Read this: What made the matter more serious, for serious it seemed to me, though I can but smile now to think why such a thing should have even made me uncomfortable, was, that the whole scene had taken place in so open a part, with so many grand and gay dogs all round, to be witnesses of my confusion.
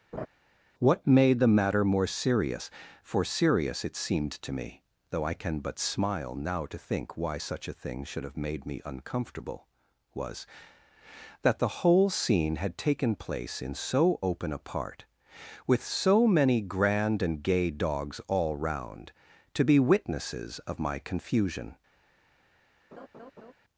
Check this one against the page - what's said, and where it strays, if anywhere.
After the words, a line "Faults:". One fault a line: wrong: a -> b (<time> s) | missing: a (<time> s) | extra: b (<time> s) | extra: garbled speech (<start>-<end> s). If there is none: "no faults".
What made the matter more serious, for serious it seemed to me, though I can but smile now to think why such a thing should have made me uncomfortable, was, that the whole scene had taken place in so open a part, with so many grand and gay dogs all round, to be witnesses of my confusion.
Faults:
missing: even (8.4 s)